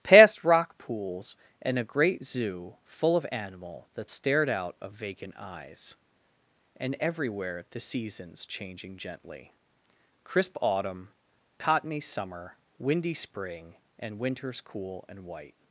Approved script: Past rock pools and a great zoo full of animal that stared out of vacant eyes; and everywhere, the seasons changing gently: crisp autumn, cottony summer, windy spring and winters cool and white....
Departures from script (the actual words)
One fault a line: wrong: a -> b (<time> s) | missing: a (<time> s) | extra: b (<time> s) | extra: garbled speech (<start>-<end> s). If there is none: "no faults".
no faults